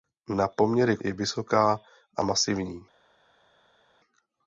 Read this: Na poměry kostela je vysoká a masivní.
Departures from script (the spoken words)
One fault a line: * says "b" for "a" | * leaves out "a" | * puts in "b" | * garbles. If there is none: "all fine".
* leaves out "kostela"